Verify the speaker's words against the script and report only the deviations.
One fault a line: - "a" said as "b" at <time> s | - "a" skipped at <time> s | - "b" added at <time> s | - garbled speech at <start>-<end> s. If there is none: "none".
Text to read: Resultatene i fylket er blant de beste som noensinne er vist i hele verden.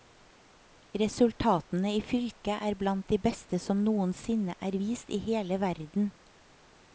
none